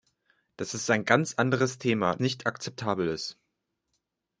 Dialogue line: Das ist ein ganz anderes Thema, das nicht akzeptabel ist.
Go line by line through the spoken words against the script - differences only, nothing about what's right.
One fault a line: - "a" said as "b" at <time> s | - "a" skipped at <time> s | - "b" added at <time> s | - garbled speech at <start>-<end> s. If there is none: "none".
- "das" skipped at 2.1 s